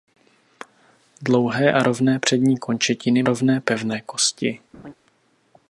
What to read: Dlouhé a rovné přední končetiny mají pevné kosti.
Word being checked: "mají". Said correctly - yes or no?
no